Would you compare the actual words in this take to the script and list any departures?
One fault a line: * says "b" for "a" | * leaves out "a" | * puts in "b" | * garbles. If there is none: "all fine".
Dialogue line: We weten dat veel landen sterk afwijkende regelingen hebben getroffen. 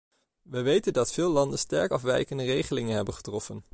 all fine